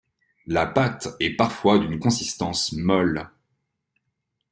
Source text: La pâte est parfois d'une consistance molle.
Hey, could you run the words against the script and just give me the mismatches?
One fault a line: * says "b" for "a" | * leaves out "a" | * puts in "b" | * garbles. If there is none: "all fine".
all fine